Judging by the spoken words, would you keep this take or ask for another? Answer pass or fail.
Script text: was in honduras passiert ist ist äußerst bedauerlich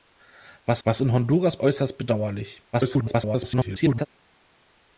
fail